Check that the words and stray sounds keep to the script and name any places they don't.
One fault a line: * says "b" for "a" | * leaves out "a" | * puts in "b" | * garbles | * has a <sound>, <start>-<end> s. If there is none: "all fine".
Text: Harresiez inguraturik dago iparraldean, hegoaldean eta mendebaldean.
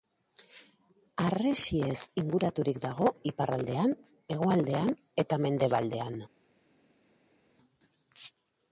all fine